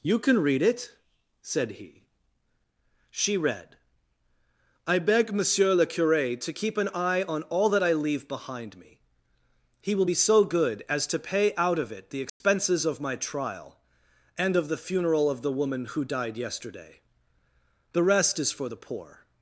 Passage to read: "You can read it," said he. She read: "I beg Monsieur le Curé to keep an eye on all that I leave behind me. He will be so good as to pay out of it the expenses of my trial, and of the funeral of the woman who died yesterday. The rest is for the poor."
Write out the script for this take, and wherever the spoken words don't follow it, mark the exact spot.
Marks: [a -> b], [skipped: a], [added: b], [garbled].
"You can read it," said he. She read: "I beg Monsieur le Curé to keep an eye on all that I leave behind me. He will be so good as to pay out of it the expenses of my trial, and of the funeral of the woman who died yesterday. The rest is for the poor."